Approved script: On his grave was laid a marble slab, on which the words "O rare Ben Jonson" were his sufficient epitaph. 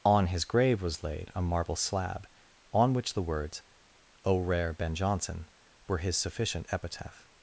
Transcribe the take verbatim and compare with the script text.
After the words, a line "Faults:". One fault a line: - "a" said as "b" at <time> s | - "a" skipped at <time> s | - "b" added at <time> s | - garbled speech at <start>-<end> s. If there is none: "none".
On his grave was laid a marble slab, on which the words "O rare Ben Jonson" were his sufficient epitaph.
Faults:
none